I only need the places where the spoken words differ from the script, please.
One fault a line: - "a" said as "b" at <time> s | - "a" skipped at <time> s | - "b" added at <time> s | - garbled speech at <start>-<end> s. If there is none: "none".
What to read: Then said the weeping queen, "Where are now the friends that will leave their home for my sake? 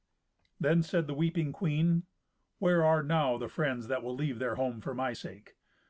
none